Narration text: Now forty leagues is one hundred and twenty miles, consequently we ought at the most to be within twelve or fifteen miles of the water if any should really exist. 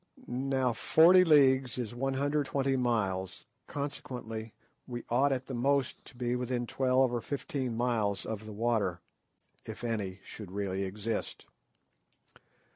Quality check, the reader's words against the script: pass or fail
fail